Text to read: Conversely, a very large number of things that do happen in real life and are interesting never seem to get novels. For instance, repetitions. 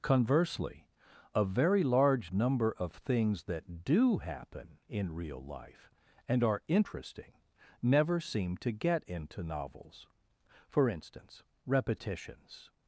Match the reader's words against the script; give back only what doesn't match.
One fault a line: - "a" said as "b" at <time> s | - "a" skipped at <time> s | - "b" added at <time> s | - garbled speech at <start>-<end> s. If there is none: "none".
- "into" added at 9.0 s